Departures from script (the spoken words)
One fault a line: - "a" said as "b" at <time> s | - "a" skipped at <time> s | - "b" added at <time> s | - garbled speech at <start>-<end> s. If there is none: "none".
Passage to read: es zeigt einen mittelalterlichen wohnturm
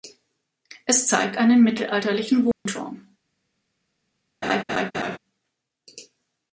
none